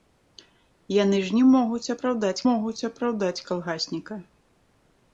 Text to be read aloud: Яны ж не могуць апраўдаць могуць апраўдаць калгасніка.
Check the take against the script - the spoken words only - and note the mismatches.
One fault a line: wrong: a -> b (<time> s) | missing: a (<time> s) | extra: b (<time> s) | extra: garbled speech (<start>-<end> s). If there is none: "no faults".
no faults